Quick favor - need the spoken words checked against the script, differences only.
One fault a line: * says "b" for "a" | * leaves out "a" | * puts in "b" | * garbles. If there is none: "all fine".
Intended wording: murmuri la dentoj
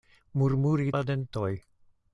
all fine